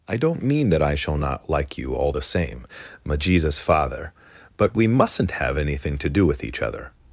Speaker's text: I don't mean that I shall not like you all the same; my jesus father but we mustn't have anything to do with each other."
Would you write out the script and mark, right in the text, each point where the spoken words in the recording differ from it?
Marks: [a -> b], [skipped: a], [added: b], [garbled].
I don't mean that I shall not like you all the same; my jesus father but we mustn't have anything to do with each other."